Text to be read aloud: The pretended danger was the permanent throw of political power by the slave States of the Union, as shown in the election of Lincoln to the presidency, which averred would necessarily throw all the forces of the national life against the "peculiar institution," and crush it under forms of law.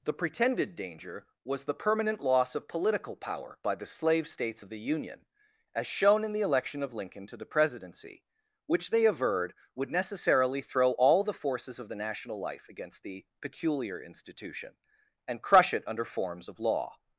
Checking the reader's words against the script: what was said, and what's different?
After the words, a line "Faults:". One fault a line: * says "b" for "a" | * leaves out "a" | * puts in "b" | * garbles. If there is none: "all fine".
The pretended danger was the permanent loss of political power by the slave States of the Union, as shown in the election of Lincoln to the presidency, which they averred would necessarily throw all the forces of the national life against the "peculiar institution," and crush it under forms of law.
Faults:
* says "loss" for "throw"
* puts in "they"